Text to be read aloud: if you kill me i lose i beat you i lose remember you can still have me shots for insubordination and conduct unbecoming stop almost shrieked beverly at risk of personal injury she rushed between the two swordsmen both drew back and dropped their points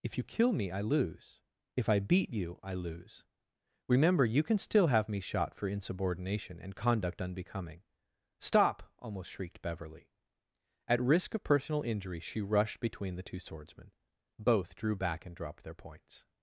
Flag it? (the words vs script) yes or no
yes